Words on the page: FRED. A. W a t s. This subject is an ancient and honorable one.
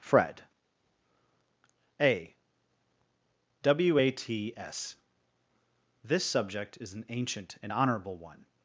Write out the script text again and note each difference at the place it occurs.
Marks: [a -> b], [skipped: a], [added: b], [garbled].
FRED. A. W a t s. This subject is an ancient and honorable one.